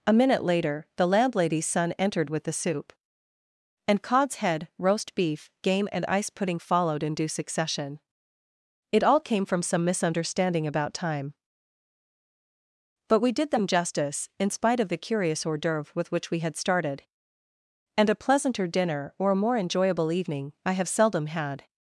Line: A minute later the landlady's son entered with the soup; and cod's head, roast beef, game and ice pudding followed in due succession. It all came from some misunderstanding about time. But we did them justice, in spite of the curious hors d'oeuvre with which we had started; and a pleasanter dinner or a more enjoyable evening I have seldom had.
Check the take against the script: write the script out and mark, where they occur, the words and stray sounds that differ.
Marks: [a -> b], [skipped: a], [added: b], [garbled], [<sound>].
A minute later the landlady's son entered with the soup; and cod's head, roast beef, game and ice pudding followed in due succession. It all came from some misunderstanding about time. But we did them justice, in spite of the curious hors d'oeuvre with which we had started; and a pleasanter dinner or a more enjoyable evening I have seldom had.